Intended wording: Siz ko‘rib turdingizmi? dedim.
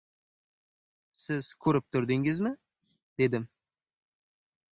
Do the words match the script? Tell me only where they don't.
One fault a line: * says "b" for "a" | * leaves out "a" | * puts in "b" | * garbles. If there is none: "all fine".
all fine